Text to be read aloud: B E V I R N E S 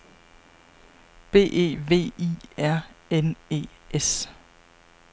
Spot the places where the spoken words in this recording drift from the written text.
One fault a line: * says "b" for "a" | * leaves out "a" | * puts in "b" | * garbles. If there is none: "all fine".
all fine